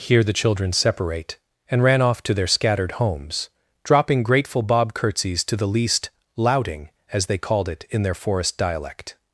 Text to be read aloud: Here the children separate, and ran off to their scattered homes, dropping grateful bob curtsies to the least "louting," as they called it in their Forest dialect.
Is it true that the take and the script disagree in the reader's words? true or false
false